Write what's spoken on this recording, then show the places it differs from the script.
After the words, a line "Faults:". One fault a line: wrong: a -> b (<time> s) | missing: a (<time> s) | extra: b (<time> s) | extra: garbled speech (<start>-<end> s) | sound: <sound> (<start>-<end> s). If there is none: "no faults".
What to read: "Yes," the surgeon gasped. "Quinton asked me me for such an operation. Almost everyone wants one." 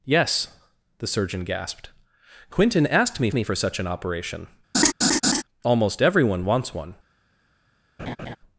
"Yes," the surgeon gasped. "Quinton asked me me for such an operation. Almost everyone wants one."
Faults:
sound: laugh (4.7-5.4 s)
sound: laugh (8.0-8.4 s)